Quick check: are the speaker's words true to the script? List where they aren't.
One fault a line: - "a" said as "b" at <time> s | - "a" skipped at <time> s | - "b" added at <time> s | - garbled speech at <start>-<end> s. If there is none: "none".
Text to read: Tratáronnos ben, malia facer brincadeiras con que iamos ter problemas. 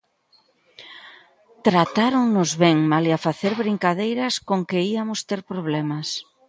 none